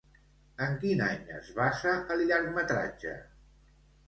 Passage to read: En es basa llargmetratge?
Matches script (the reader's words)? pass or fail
fail